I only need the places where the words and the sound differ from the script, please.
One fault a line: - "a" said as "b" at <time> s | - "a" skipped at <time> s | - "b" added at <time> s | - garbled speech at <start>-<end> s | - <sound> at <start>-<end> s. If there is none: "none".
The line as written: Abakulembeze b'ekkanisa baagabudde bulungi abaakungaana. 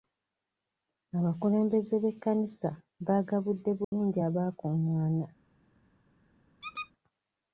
- dropout at 3.8-3.9 s
- squeak at 6.6-6.9 s